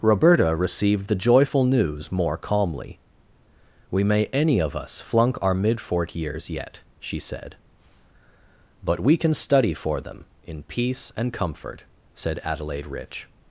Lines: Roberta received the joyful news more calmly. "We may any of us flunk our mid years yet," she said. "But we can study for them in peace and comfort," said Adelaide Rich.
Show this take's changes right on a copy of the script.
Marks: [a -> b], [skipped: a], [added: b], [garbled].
Roberta received the joyful news more calmly. "We may any of us flunk our mid [added: fort] years yet," she said. "But we can study for them in peace and comfort," said Adelaide Rich.